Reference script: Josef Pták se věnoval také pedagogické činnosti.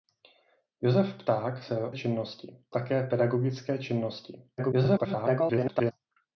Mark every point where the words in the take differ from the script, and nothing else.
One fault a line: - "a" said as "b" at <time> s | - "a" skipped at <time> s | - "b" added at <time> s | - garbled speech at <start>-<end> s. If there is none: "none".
- "věnoval" said as "činnosti" at 1.9 s
- garbled speech at 4.6-5.9 s